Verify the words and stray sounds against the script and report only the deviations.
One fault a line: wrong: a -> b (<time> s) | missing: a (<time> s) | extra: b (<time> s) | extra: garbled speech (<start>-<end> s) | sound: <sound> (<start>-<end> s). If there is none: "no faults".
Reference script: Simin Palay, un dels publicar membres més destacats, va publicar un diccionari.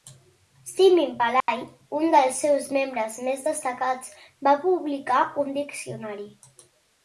sound: dropout (1.4-1.5 s)
wrong: publicar -> seus (2.4 s)